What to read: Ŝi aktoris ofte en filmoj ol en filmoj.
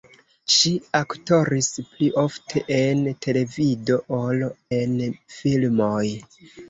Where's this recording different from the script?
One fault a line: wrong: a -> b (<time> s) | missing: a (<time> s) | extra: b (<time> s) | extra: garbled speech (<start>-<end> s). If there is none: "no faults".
extra: pli (1.9 s)
wrong: filmoj -> televido (3.3 s)